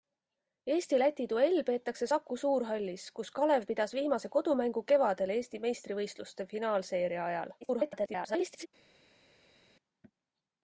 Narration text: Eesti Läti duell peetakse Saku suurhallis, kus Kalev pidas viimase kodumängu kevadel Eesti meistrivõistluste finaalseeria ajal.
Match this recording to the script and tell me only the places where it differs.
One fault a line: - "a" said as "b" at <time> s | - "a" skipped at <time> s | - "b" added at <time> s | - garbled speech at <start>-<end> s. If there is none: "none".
- garbled speech at 7.6-8.7 s